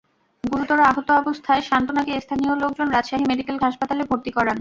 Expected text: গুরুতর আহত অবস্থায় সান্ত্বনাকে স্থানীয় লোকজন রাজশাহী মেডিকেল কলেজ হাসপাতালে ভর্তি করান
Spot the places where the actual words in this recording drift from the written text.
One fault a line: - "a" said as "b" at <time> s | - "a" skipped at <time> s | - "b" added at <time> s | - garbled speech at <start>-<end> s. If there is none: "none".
- "কলেজ" skipped at 3.6 s